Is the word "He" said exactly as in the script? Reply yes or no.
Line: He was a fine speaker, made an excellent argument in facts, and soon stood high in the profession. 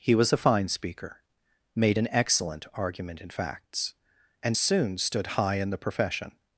yes